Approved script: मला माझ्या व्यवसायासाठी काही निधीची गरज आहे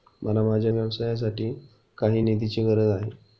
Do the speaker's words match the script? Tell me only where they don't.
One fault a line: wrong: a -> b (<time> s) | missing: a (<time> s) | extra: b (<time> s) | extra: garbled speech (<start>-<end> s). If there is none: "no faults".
no faults